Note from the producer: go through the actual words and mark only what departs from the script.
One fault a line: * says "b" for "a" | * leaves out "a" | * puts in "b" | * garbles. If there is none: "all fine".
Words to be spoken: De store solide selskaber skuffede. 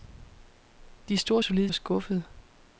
* leaves out "selskaber"